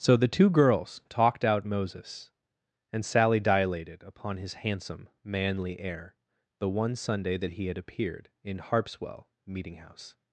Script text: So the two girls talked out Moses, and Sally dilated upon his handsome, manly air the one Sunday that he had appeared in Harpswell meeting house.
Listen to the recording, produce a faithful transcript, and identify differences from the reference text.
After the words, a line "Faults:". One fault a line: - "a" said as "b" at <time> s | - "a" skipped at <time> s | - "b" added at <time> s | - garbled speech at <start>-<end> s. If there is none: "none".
So the two girls talked out Moses, and Sally dilated upon his handsome, manly air the one Sunday that he had appeared in Harpswell meeting house.
Faults:
none